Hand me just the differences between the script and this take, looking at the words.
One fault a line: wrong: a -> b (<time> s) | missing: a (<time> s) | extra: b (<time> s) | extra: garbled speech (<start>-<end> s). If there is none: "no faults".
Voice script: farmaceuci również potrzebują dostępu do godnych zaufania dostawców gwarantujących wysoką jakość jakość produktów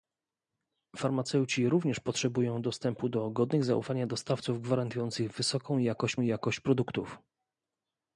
no faults